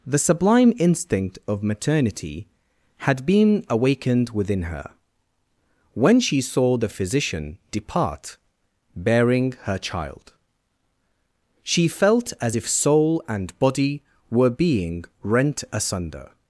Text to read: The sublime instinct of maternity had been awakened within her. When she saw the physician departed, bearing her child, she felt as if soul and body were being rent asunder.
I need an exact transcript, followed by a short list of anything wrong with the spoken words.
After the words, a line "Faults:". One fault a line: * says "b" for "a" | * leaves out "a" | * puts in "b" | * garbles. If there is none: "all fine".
The sublime instinct of maternity had been awakened within her. When she saw the physician depart, bearing her child, she felt as if soul and body were being rent asunder.
Faults:
* says "depart" for "departed"